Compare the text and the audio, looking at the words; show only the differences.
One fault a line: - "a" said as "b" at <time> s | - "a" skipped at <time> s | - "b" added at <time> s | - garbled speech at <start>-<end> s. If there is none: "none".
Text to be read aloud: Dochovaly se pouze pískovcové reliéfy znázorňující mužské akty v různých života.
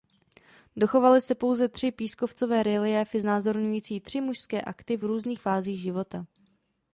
- "tři" added at 1.7 s
- "tři" added at 4.0 s
- "fázích" added at 5.4 s